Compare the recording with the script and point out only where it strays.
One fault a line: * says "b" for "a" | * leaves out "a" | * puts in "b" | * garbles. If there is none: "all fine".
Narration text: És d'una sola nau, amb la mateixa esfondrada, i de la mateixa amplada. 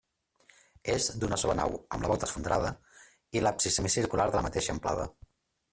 * says "volta" for "mateixa"
* puts in "l'absis semicircular"